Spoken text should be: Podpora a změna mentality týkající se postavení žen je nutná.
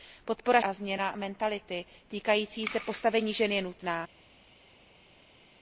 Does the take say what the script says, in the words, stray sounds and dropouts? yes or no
yes